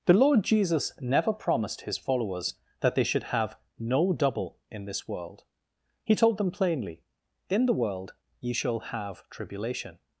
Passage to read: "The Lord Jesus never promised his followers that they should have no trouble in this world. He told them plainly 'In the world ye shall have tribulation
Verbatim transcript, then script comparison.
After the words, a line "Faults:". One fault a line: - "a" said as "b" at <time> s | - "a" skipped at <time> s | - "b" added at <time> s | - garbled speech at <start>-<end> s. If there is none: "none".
"The Lord Jesus never promised his followers that they should have no double in this world. He told them plainly 'In the world ye shall have tribulation
Faults:
- "trouble" said as "double" at 4.1 s